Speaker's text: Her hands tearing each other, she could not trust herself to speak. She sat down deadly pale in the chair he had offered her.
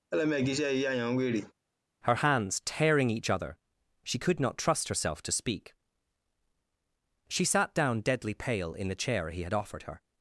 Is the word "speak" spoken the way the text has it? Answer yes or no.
yes